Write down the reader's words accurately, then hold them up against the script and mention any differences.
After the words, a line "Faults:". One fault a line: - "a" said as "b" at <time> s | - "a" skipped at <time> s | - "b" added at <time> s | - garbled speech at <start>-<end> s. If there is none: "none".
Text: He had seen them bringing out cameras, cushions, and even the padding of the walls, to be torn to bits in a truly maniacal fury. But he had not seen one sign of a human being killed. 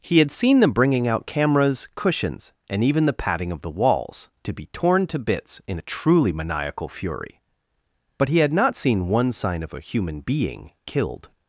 He had seen them bringing out cameras, cushions, and even the padding of the walls, to be torn to bits in a truly maniacal fury. But he had not seen one sign of a human being killed.
Faults:
none